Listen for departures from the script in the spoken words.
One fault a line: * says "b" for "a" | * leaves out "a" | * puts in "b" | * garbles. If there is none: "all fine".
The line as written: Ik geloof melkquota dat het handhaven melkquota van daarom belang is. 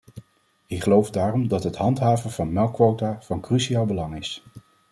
* says "daarom" for "melkquota"
* puts in "van"
* says "cruciaal" for "daarom"